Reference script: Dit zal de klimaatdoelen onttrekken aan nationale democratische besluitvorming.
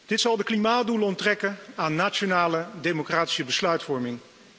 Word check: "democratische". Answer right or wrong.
right